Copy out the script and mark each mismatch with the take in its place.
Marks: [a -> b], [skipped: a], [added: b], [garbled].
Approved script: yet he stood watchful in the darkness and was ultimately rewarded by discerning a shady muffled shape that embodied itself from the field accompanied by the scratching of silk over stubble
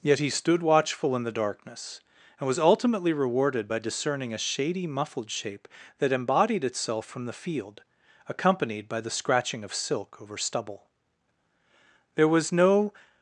yet he stood watchful in the darkness and was ultimately rewarded by discerning a shady muffled shape that embodied itself from the field accompanied by the scratching of silk over stubble [added: there was no]